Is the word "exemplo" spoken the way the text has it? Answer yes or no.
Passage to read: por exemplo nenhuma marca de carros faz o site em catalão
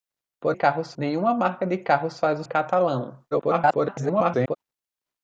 no